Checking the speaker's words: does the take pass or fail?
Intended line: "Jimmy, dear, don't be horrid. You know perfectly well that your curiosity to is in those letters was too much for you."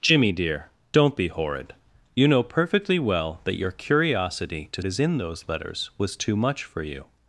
pass